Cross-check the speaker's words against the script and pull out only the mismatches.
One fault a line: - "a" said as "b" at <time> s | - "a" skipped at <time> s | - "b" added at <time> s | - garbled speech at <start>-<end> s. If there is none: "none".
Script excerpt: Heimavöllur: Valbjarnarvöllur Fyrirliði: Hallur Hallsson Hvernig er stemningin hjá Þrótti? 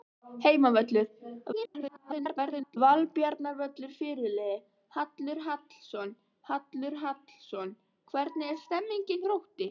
- garbled speech at 1.5-2.8 s
- "Hallur Hallsson" added at 6.5 s
- "hjá" skipped at 9.3 s